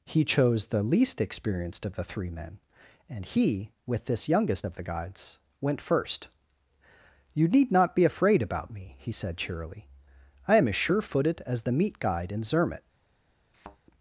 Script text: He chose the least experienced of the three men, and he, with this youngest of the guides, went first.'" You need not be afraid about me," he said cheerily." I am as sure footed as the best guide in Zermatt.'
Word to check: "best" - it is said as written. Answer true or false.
false